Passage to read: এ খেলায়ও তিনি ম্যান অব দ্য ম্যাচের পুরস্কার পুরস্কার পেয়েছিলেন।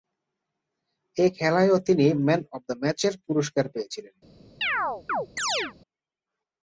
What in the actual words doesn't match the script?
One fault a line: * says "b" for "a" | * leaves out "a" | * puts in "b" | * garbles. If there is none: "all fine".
* leaves out "পুরস্কার"